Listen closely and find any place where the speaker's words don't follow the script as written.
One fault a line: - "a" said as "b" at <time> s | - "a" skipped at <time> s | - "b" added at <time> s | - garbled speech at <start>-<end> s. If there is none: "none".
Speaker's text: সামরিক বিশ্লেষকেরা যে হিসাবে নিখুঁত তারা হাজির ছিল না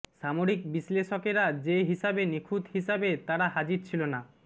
- "হিসাবে" added at 2.8 s